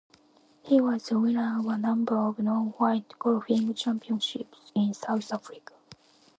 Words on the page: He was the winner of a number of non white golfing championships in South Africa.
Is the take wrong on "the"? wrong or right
right